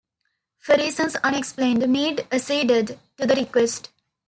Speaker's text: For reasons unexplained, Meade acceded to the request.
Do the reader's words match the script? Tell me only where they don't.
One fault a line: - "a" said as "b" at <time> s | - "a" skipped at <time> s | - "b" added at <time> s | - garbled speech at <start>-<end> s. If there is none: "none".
none